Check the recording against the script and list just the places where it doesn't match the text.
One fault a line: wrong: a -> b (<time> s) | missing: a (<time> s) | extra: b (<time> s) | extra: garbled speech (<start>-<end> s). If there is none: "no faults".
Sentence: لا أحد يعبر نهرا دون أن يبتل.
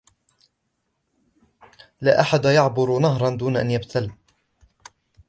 no faults